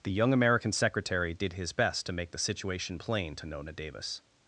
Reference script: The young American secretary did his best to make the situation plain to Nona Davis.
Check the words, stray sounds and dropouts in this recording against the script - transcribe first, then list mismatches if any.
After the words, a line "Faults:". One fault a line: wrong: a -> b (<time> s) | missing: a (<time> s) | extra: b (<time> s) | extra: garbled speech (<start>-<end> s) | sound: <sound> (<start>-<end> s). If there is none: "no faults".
The young American secretary did his best to make the situation plain to Nona Davis.
Faults:
no faults